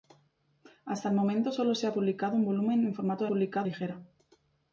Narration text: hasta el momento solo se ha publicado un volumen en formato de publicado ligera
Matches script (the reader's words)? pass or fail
pass